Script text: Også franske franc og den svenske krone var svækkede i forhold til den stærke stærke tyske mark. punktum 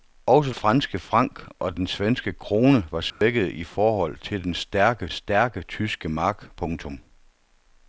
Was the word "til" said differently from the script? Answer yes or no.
no